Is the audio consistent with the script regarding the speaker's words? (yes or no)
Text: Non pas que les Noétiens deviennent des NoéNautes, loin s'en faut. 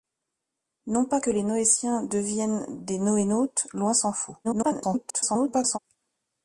no